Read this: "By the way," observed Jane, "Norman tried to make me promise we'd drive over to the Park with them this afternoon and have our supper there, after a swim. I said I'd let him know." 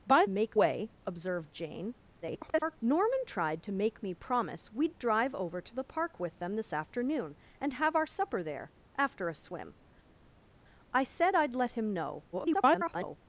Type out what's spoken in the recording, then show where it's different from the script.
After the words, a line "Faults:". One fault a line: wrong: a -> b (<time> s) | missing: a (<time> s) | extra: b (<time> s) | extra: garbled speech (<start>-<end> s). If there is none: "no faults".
"By make way," observed Jane, [garbled] "Norman tried to make me promise we'd drive over to the Park with them this afternoon and have our supper there, after a swim. I said I'd let him know." [garbled]
Faults:
wrong: the -> make (0.3 s)
extra: garbled speech (2.2-2.8 s)
extra: garbled speech (12.3-13.2 s)